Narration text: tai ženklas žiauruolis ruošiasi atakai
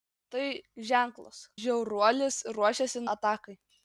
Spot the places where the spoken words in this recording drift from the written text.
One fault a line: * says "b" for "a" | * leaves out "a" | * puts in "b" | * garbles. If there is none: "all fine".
all fine